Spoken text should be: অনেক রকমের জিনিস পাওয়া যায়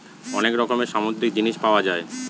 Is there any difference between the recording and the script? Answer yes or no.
yes